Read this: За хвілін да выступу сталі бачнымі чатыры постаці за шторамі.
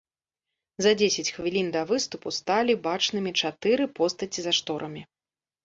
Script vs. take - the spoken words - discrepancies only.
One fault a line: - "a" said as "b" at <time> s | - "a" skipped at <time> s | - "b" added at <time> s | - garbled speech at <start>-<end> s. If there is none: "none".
- "дзесяць" added at 1.0 s